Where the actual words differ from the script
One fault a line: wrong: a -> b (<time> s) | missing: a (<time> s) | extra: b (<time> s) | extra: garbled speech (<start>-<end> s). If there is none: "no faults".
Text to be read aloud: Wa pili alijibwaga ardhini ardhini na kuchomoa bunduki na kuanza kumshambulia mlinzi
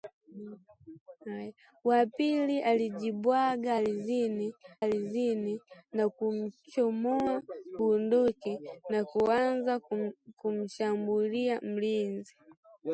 no faults